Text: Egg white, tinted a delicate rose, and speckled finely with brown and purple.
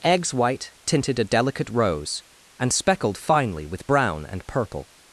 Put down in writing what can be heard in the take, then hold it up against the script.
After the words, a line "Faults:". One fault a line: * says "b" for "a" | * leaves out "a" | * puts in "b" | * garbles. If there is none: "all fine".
Eggs white, tinted a delicate rose, and speckled finely with brown and purple.
Faults:
* says "Eggs" for "Egg"